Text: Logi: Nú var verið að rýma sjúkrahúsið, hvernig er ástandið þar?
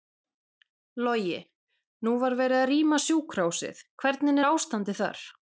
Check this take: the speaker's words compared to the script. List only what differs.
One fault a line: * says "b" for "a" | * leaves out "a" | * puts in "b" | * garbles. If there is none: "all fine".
all fine